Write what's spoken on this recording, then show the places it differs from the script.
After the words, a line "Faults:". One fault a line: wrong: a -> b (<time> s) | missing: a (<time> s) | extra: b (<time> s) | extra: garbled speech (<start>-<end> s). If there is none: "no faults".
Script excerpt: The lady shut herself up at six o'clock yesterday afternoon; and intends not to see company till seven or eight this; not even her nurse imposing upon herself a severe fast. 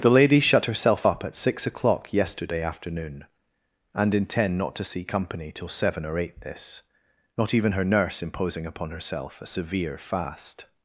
The lady shut herself up at six o'clock yesterday afternoon; and intend not to see company till seven or eight this; not even her nurse imposing upon herself a severe fast.
Faults:
wrong: intends -> intend (4.1 s)